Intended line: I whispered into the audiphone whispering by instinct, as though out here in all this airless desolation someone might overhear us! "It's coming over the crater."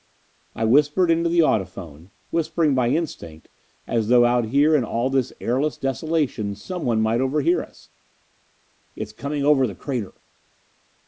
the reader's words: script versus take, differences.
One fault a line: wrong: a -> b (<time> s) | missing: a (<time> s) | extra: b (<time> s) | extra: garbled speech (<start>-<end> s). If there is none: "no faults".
no faults